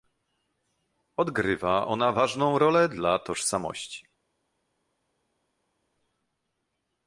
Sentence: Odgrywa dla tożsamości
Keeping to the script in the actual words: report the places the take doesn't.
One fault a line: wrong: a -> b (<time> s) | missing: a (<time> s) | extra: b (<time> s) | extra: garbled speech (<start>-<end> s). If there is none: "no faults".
extra: ona ważną rolę (1.9 s)